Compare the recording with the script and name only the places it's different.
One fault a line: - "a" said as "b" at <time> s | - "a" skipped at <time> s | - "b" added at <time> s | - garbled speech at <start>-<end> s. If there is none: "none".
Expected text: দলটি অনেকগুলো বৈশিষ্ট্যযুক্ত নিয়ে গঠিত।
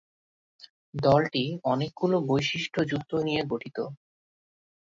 none